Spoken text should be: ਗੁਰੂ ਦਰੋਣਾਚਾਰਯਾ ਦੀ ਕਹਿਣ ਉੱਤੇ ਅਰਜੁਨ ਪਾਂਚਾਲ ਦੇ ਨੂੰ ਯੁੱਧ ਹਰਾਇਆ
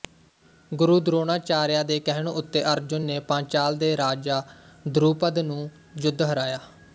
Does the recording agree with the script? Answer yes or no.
no